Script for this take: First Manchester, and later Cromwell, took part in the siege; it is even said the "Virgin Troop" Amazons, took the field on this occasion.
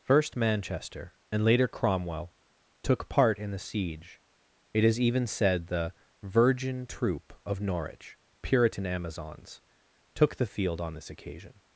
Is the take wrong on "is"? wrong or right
right